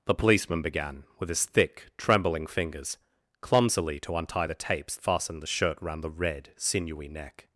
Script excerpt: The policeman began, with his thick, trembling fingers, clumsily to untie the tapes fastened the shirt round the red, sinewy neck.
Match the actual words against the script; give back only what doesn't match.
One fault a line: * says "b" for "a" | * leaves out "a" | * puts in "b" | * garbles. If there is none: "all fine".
all fine